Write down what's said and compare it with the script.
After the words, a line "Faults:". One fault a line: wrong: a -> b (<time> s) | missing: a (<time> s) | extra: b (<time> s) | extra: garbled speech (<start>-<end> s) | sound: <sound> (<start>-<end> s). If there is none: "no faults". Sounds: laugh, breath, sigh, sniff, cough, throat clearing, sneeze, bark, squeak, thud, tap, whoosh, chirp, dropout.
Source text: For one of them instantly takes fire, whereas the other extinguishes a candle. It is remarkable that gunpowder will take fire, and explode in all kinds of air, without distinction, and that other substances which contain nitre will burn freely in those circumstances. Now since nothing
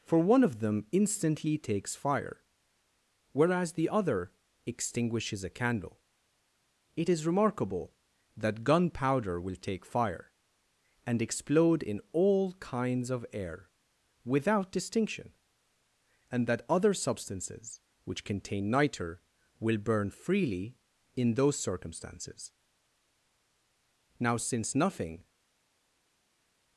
For one of them instantly takes fire, whereas the other extinguishes a candle. It is remarkable that gunpowder will take fire, and explode in all kinds of air, without distinction, and that other substances which contain nitre will burn freely in those circumstances. Now since nothing
Faults:
no faults